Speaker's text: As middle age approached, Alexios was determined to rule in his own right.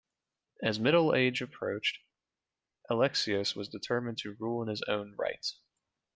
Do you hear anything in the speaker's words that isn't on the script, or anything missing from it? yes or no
no